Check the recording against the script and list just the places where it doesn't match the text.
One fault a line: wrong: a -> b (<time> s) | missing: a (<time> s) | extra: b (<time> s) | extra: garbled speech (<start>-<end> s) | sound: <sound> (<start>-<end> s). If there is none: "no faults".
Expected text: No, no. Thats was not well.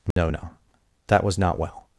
sound: dropout (0.1-0.2 s)
wrong: Thats -> That (1.1 s)